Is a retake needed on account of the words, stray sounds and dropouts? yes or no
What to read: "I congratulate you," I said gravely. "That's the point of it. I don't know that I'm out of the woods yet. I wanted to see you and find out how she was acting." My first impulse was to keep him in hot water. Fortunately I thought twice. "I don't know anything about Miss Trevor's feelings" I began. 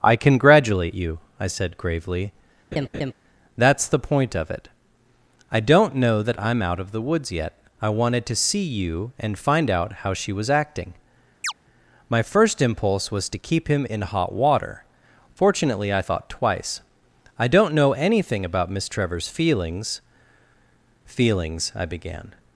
yes